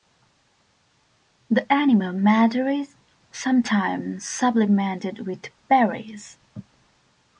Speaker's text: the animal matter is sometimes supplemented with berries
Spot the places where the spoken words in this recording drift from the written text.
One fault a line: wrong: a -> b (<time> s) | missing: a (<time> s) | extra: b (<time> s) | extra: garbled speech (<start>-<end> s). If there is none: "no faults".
no faults